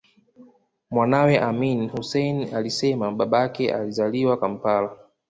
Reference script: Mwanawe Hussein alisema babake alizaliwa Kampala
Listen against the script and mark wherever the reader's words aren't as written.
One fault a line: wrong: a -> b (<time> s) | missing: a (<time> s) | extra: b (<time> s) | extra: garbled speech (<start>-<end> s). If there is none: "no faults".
extra: Amin (1.4 s)